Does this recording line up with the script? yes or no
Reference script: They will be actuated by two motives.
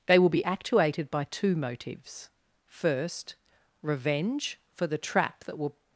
no